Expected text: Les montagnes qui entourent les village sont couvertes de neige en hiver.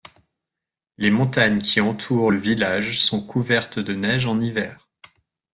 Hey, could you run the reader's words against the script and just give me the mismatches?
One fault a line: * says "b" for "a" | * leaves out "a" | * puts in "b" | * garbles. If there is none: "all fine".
* says "le" for "les"